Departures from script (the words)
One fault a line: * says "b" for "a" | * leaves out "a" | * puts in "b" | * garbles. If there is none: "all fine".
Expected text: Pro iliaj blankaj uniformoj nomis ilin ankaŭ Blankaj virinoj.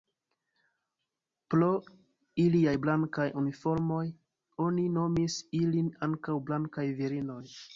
* puts in "oni"